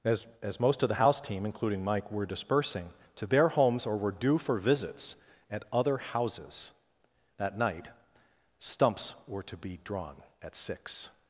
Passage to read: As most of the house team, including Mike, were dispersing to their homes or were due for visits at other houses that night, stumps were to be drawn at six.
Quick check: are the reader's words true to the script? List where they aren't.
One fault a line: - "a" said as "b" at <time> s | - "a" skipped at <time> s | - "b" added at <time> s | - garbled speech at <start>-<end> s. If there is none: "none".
- "as" added at 0.4 s